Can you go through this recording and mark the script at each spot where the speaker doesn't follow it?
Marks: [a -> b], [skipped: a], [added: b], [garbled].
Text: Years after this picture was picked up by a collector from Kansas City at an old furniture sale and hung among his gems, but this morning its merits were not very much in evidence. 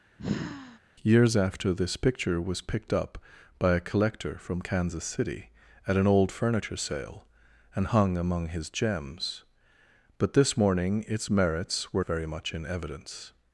Years after this picture was picked up by a collector from Kansas City at an old furniture sale and hung among his gems, but this morning its merits were [skipped: not] very much in evidence.